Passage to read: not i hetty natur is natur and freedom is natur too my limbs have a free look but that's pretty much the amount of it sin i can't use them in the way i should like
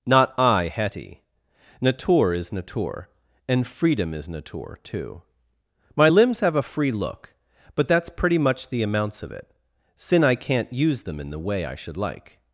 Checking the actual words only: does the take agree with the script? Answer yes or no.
no